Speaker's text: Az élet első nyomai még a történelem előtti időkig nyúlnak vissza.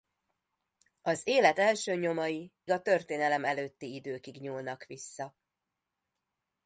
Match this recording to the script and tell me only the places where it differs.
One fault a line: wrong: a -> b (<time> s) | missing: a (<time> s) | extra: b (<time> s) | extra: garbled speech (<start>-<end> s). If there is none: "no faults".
missing: még (2.5 s)